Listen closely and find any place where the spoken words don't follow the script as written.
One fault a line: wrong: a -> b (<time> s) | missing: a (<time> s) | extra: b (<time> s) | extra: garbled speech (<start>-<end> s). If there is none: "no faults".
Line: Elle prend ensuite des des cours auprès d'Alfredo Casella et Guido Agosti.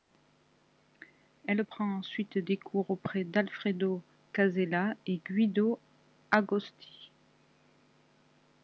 missing: des (2.6 s)